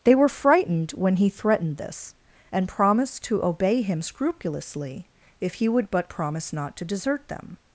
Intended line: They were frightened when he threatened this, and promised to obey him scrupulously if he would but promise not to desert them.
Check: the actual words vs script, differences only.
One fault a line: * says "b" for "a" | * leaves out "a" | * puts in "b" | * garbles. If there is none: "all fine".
all fine